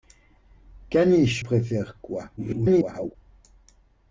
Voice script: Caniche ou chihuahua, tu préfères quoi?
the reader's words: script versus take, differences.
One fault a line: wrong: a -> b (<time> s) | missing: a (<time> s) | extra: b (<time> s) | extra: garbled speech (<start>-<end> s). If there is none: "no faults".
missing: ou chihuahua tu (1.4 s)
extra: garbled speech (2.4-3.1 s)